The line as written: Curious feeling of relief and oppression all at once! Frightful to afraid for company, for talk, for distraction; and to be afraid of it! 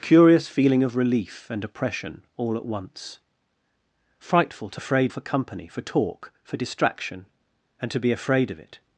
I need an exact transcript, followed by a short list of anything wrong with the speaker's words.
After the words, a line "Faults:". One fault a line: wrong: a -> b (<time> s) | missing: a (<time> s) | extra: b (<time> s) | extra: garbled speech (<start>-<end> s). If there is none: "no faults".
Curious feeling of relief and oppression all at once! Frightful to afraid for company, for talk, for distraction; and to be afraid of it!
Faults:
no faults